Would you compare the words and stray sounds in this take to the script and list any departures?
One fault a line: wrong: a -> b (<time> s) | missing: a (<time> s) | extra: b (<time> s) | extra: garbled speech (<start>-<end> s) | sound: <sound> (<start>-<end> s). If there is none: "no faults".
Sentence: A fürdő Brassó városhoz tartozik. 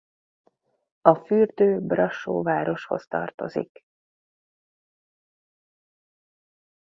no faults